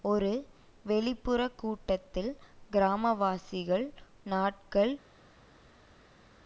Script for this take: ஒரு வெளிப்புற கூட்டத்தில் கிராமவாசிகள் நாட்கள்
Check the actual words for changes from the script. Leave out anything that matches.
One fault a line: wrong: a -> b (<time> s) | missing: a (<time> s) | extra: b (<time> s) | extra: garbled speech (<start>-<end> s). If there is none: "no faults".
no faults